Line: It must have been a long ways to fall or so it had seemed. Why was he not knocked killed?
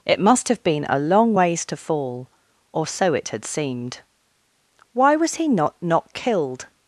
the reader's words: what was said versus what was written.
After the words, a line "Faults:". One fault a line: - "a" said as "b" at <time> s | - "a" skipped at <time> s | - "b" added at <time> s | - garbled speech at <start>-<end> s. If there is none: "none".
It must have been a long ways to fall or so it had seemed. Why was he not knocked killed?
Faults:
none